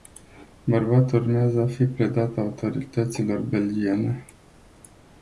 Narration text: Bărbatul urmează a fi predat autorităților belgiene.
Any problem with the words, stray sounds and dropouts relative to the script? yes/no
no